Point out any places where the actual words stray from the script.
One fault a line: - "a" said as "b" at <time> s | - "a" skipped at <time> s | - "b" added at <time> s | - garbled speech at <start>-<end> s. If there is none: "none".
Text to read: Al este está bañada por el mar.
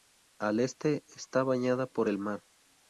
none